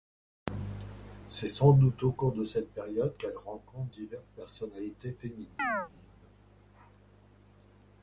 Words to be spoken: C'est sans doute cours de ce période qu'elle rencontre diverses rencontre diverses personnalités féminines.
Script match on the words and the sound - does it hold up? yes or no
no